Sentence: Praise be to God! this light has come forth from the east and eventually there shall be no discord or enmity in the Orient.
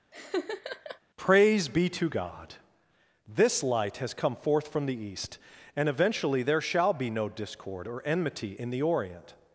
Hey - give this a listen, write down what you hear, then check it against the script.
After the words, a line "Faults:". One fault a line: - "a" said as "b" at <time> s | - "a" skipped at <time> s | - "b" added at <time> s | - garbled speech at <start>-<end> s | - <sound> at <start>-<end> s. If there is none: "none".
Praise be to God! this light has come forth from the east and eventually there shall be no discord or enmity in the Orient.
Faults:
- laugh at 0.1-1.0 s